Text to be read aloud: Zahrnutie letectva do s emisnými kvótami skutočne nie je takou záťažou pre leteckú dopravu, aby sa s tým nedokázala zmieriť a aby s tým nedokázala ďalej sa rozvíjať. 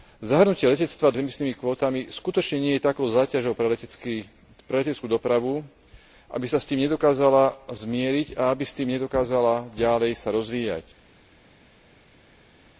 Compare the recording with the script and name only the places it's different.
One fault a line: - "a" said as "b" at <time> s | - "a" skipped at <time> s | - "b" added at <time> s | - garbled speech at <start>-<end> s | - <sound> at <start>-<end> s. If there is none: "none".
none